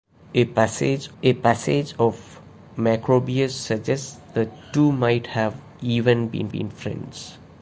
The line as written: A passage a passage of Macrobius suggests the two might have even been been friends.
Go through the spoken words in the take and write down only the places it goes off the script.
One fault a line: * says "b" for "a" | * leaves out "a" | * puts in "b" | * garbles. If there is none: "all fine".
all fine